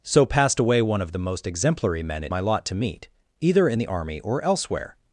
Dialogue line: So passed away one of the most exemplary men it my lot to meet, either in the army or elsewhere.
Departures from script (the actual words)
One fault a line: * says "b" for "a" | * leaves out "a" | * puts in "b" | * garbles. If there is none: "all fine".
all fine